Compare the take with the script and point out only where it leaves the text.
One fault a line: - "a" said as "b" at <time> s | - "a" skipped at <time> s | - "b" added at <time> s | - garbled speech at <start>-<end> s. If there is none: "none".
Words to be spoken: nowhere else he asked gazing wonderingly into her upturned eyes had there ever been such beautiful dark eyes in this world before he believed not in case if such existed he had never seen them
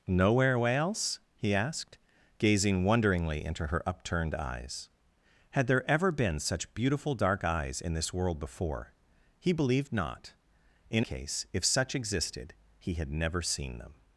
none